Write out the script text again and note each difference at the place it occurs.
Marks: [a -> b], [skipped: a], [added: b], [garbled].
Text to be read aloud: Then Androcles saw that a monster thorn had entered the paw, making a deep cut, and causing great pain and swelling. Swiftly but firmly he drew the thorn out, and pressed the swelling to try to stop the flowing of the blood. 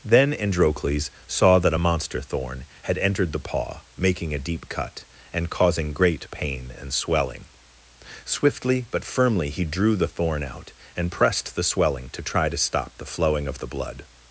Then Androcles saw that a monster thorn had entered the paw, making a deep cut, and causing great pain and swelling. Swiftly but firmly he drew the thorn out, and pressed the swelling to try to stop the flowing of the blood.